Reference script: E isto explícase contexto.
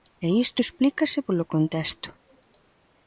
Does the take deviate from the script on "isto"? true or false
false